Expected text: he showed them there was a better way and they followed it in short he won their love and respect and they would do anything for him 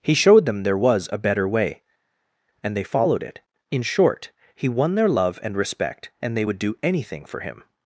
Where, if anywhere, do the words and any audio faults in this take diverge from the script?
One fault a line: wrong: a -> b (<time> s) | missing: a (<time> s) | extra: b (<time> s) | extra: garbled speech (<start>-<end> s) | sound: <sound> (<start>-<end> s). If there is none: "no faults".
no faults